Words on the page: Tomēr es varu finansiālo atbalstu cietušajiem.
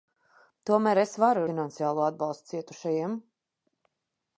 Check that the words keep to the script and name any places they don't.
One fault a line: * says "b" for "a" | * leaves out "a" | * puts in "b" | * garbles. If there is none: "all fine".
all fine